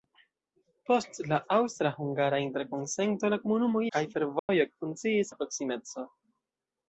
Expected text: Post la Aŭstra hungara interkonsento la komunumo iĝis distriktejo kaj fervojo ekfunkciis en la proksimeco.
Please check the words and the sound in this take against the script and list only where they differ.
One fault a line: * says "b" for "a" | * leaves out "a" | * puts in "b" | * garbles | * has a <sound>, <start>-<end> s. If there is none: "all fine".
* leaves out "iĝis distriktejo"
* has a dropout, 4.4-4.5 s
* leaves out "en"